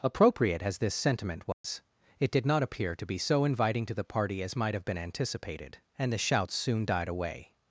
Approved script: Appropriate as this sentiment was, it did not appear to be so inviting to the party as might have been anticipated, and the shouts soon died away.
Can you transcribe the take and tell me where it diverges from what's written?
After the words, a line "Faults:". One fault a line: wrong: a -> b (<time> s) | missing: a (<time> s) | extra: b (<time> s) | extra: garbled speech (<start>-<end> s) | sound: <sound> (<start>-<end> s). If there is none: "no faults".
Appropriate as this sentiment was, it did not appear to be so inviting to the party as might have been anticipated, and the shouts soon died away.
Faults:
sound: dropout (1.5-1.6 s)